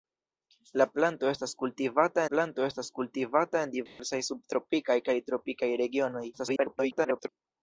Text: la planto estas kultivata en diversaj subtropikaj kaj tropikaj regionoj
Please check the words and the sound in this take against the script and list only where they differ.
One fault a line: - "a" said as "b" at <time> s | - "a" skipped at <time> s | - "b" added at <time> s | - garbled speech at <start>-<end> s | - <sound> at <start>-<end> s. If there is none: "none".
- "planto estas kultivata" added at 2.3 s
- dropout at 3.9-4.0 s
- garbled speech at 6.3-7.3 s